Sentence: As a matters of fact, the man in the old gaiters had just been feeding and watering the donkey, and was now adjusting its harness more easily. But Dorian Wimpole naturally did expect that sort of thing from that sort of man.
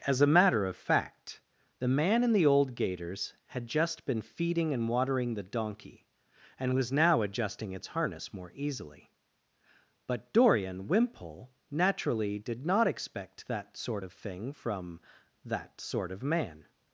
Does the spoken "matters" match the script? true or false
false